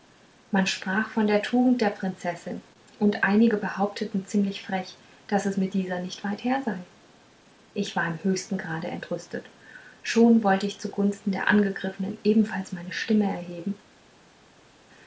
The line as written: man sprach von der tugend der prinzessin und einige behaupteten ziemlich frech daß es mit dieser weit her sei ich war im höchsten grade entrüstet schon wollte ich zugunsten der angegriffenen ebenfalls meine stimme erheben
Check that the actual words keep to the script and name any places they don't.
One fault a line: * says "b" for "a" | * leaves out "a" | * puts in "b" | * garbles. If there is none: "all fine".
* puts in "nicht"